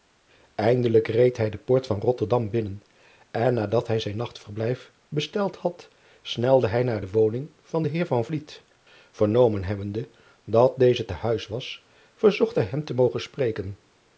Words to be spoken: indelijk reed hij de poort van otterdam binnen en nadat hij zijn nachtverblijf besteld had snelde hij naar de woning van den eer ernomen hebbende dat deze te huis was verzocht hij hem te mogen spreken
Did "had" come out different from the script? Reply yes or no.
no